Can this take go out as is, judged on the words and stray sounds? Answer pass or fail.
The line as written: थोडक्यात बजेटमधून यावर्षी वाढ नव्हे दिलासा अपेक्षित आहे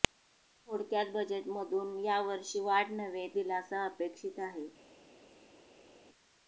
pass